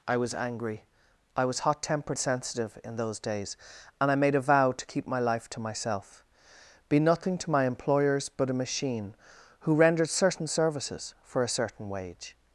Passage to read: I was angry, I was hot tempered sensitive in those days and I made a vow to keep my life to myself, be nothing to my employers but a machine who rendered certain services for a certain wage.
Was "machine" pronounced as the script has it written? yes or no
yes